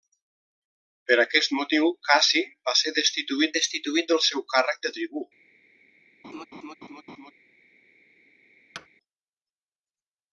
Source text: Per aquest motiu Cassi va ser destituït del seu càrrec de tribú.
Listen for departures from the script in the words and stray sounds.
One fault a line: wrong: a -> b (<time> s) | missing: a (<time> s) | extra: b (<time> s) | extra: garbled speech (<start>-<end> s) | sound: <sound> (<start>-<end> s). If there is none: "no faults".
extra: destituït (3.6 s)
sound: laugh (6.2-7.3 s)
sound: thud (8.7-8.9 s)